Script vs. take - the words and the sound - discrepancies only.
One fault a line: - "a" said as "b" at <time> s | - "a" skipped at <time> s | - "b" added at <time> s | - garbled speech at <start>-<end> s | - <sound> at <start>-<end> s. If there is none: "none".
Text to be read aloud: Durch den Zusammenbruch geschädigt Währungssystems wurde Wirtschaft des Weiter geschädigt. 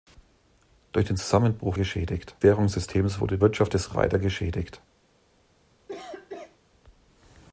- cough at 5.9-6.6 s